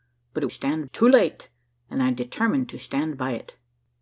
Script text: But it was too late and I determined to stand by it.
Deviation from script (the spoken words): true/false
true